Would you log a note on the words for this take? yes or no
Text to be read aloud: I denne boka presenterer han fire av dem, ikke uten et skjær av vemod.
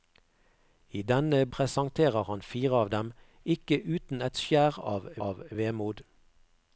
yes